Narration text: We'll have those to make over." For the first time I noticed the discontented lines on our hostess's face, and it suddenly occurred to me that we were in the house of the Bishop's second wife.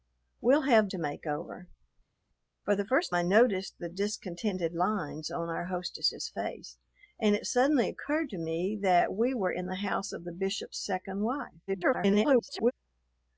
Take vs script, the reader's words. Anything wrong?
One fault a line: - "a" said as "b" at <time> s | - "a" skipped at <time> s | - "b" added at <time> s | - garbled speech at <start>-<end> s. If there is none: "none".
- "those" skipped at 0.9 s
- "time" skipped at 3.1 s
- garbled speech at 11.7-12.7 s